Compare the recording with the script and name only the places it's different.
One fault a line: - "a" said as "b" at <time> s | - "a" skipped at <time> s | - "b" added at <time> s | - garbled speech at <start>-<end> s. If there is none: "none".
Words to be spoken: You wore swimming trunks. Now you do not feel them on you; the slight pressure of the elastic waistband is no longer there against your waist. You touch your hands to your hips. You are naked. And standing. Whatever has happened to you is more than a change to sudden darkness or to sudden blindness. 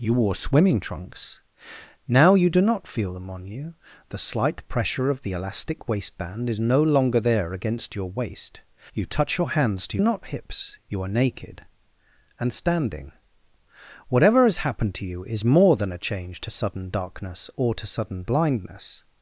- "your" said as "not" at 10.0 s